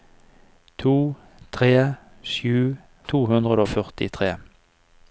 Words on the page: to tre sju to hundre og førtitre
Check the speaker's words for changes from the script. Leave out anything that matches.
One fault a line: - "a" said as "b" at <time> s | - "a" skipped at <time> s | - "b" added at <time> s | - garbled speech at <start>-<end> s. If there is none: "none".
none